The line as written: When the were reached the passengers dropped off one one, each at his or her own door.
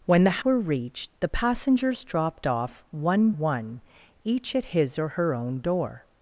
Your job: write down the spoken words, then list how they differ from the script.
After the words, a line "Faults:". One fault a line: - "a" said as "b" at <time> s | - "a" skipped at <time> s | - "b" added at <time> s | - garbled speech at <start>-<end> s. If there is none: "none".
When the were reached the passengers dropped off one one, each at his or her own door.
Faults:
none